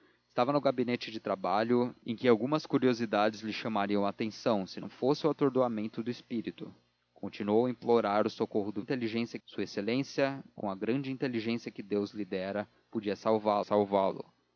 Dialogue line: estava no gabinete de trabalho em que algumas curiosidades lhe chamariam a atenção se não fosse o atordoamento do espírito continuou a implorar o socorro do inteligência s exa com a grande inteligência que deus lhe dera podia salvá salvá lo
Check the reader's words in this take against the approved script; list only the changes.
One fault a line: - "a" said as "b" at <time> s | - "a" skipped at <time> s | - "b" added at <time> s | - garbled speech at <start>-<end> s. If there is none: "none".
none